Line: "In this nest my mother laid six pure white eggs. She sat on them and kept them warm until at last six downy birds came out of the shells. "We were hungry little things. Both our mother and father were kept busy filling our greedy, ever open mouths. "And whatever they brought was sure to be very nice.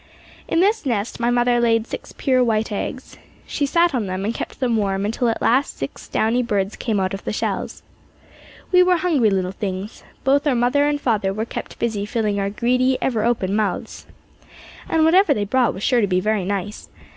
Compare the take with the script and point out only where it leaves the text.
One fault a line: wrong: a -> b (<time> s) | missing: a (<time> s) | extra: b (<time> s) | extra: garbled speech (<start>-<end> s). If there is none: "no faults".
no faults